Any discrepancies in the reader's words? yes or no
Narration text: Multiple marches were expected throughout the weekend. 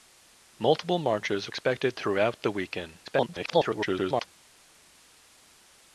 yes